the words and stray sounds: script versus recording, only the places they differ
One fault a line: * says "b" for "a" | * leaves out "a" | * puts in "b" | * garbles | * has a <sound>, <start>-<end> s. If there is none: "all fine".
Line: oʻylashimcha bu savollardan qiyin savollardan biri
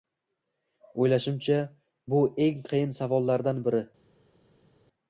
* says "eng" for "savollardan"